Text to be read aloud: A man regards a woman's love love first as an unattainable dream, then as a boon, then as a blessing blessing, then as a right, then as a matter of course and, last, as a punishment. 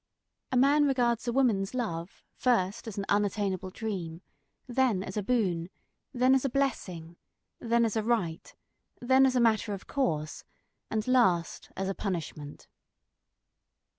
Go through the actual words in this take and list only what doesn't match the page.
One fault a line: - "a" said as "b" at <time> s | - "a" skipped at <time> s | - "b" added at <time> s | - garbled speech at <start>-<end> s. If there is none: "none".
- "love" skipped at 2.2 s
- "blessing" skipped at 7.2 s